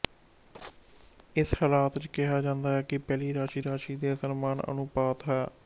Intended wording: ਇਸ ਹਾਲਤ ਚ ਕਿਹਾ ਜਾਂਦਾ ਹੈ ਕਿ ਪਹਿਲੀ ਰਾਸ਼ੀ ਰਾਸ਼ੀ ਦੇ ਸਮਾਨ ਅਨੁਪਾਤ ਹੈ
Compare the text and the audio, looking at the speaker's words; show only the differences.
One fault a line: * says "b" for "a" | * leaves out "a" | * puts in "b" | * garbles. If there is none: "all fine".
all fine